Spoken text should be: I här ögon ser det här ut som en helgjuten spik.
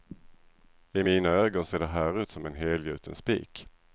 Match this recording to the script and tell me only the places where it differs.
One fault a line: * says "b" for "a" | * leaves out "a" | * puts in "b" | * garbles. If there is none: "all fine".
* says "mina" for "här"